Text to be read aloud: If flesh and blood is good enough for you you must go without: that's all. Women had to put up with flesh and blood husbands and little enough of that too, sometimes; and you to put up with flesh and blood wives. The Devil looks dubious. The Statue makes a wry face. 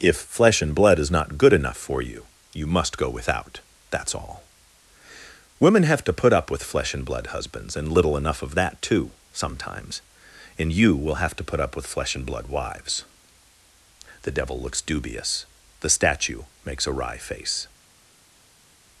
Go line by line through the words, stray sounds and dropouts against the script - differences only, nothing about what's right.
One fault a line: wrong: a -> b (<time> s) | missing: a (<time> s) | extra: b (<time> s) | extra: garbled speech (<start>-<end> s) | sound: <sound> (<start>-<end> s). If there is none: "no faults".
extra: not (1.1 s)
wrong: had -> have (5.8 s)
extra: will have (11.0 s)